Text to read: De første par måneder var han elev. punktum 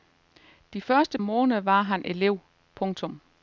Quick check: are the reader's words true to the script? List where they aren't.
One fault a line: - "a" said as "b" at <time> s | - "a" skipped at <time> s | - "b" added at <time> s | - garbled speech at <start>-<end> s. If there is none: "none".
- "par" skipped at 1.2 s